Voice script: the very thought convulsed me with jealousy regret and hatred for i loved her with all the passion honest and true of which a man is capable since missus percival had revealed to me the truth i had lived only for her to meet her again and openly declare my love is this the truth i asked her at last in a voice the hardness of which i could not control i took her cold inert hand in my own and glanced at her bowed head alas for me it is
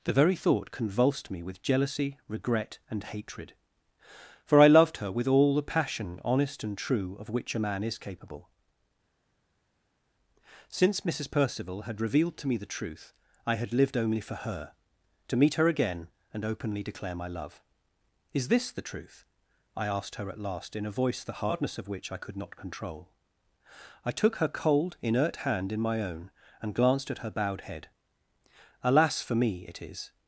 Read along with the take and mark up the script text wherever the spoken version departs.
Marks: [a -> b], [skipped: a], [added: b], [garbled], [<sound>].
the very thought convulsed me with jealousy regret and hatred for i loved her with all the passion honest and true of which a man is capable since missus percival had revealed to me the truth i had lived only for her to meet her again and openly declare my love is this the truth i asked her at last in a voice the hardness of which i could not control i took her cold inert hand in my own and glanced at her bowed head alas for me it is